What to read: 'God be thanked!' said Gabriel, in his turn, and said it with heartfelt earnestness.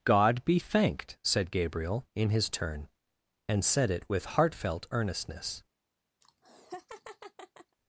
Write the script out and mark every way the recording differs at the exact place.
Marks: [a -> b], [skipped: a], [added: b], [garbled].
'God be thanked!' said Gabriel, in his turn, and said it with heartfelt earnestness.